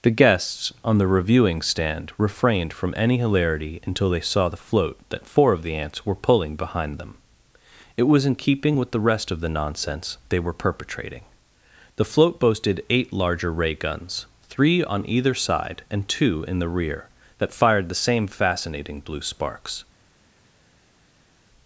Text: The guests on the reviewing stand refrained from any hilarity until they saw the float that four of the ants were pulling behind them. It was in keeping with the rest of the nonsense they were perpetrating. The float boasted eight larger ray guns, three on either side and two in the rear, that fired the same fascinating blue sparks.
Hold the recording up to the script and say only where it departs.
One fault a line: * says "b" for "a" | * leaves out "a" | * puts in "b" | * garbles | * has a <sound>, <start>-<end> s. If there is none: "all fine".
all fine